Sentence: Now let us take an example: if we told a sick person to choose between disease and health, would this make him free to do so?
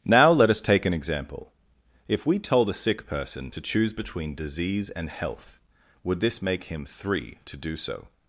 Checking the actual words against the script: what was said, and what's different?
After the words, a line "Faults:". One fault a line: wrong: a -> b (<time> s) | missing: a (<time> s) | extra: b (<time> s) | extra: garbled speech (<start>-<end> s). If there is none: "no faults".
Now let us take an example: if we told a sick person to choose between disease and health, would this make him three to do so?
Faults:
wrong: free -> three (6.9 s)